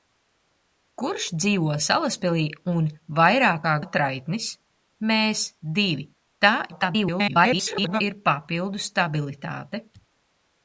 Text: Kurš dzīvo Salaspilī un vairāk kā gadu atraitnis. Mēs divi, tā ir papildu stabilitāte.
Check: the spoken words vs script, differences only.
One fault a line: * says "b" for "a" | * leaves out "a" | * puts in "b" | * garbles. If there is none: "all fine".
* leaves out "gadu"
* garbles